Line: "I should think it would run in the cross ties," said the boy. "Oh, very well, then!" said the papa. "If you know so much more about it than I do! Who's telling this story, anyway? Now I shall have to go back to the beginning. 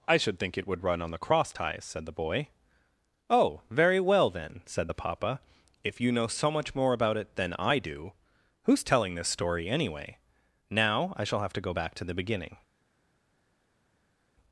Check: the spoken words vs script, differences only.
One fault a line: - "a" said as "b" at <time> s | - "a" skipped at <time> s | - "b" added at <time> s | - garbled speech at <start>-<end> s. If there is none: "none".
- "in" said as "on" at 1.0 s